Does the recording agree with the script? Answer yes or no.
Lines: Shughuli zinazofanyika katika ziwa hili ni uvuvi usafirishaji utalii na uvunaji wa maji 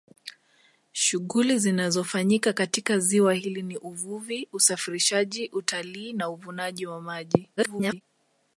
no